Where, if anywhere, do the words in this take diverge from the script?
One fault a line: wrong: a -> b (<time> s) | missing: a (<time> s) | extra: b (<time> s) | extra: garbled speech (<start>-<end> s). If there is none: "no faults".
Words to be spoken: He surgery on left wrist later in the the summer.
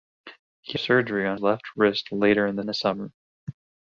no faults